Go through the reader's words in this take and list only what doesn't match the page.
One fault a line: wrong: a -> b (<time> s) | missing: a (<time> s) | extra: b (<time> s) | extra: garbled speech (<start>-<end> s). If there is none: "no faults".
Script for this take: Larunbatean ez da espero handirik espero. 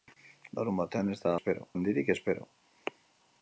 no faults